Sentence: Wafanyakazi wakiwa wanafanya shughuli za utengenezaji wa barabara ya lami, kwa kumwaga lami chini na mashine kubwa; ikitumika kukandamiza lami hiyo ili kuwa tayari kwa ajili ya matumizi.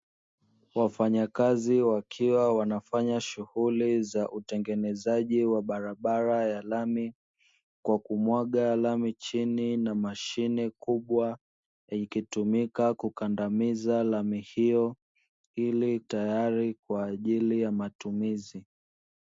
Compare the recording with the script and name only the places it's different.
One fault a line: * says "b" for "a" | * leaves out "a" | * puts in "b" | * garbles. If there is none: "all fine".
* leaves out "kuwa"